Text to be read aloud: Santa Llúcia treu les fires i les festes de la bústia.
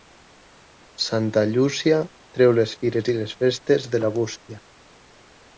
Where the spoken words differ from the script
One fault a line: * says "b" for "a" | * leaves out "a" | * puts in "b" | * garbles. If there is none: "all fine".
all fine